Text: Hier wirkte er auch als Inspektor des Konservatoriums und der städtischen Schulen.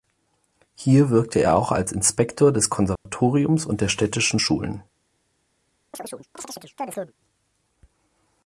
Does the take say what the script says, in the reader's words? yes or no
yes